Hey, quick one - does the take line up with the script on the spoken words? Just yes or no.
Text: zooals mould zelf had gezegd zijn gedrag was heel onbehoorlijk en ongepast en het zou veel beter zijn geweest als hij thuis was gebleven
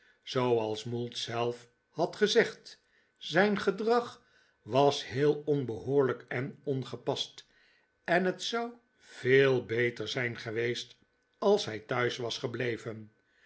yes